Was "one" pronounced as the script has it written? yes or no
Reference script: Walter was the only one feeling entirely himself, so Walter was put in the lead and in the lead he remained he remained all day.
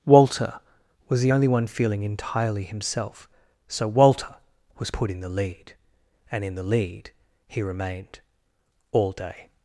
yes